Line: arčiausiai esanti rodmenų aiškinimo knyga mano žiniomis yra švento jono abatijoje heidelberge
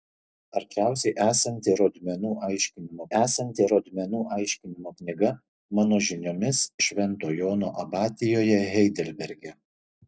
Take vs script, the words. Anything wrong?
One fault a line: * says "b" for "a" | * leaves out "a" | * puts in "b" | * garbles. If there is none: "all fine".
* puts in "esanti rodmenų aiškinimo"
* leaves out "yra"